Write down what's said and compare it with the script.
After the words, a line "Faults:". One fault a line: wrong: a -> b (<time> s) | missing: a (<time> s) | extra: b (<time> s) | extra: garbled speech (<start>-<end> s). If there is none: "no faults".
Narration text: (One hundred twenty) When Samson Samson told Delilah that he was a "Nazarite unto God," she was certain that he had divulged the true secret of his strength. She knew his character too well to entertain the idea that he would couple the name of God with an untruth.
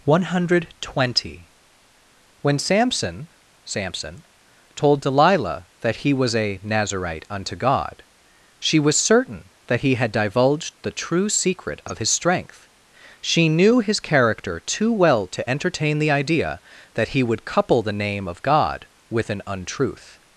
(One hundred twenty) When Samson Samson told Delilah that he was a "Nazarite unto God," she was certain that he had divulged the true secret of his strength. She knew his character too well to entertain the idea that he would couple the name of God with an untruth.
Faults:
no faults